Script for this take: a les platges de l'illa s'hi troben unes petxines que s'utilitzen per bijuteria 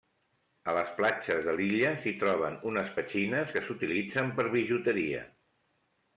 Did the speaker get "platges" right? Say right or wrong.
right